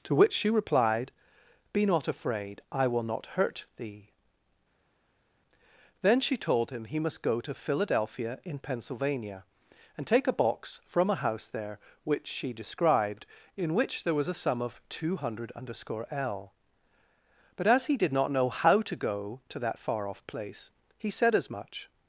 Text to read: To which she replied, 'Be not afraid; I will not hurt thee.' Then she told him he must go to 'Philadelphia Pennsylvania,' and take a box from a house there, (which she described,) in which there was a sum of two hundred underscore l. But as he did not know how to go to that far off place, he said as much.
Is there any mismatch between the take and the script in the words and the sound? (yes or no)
yes